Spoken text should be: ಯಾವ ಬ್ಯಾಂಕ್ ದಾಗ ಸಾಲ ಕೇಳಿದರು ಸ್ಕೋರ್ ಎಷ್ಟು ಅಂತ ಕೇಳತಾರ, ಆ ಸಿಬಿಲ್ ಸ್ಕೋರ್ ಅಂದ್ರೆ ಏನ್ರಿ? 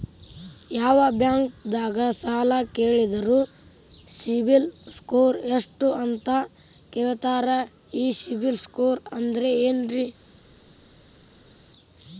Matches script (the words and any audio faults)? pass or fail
fail